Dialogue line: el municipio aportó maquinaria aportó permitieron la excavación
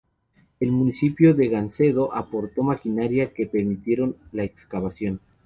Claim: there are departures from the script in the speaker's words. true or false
true